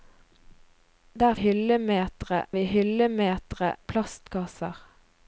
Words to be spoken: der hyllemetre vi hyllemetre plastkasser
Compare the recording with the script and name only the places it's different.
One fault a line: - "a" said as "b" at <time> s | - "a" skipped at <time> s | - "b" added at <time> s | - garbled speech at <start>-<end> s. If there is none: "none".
none